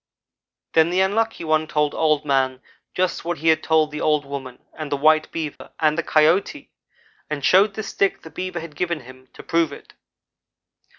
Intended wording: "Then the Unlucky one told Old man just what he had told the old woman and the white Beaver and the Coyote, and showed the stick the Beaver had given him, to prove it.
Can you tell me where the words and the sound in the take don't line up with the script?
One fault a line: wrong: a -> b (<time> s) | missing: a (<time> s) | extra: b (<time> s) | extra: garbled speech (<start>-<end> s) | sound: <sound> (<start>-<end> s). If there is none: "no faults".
sound: dropout (5.6-5.6 s)